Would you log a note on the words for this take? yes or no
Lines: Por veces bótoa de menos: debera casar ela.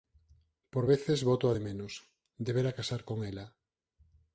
yes